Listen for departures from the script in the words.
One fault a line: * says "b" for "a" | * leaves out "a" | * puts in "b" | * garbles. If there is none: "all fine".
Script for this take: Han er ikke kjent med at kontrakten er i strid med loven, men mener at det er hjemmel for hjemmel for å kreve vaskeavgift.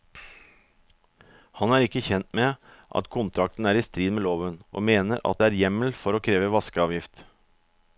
* says "og" for "men"
* leaves out "hjemmel for"